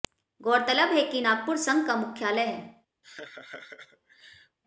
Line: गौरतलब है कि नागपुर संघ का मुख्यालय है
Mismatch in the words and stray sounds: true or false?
true